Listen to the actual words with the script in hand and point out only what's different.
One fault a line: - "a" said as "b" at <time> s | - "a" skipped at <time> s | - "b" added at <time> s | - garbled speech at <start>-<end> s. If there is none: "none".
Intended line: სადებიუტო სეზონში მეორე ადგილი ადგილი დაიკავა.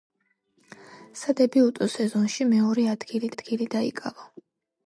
none